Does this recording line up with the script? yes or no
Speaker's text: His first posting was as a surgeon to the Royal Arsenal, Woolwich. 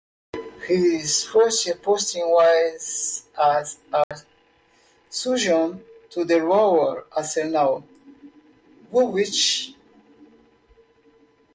yes